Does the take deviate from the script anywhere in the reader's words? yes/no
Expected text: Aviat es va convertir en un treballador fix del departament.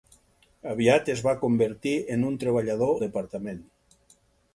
yes